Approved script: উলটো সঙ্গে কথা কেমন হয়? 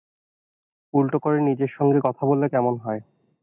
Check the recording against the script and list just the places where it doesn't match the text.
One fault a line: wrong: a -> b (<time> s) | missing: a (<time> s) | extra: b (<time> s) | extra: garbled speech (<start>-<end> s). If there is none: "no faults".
extra: করে নিজের (1.2 s)
extra: বললে (2.2 s)